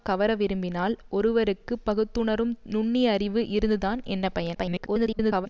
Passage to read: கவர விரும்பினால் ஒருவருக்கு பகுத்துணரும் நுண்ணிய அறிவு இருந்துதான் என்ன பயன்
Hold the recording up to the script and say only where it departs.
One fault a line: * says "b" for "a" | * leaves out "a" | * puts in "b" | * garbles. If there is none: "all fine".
* garbles